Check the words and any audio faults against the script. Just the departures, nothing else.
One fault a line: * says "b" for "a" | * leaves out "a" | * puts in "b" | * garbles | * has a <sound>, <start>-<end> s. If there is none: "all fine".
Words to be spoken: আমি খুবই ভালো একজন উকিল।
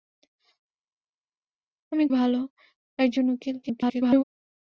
* leaves out "খুবই"
* garbles